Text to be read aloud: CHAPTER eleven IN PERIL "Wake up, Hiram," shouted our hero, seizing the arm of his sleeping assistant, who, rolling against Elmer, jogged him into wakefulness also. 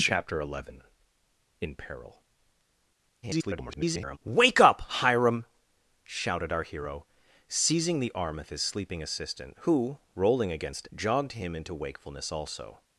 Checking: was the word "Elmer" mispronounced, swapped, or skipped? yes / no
yes